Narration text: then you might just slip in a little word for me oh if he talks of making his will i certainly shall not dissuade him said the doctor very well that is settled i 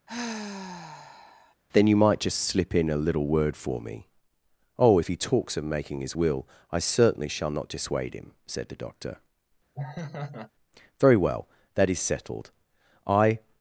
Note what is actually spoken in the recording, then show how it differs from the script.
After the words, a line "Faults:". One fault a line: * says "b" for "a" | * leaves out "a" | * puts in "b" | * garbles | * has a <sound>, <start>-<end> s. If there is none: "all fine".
then you might just slip in a little word for me oh if he talks of making his will i certainly shall not dissuade him said the doctor very well that is settled i
Faults:
* has a sigh, 0.1-1.5 s
* has a laugh, 9.7-10.5 s